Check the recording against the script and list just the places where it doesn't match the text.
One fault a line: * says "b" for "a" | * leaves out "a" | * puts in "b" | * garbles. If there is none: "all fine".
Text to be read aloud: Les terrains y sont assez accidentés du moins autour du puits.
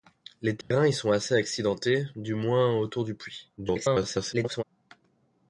* garbles